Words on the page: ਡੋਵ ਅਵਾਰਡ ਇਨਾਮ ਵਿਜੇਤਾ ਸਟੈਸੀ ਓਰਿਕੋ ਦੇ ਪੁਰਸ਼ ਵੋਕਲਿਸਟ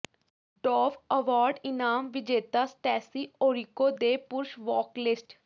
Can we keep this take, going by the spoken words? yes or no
yes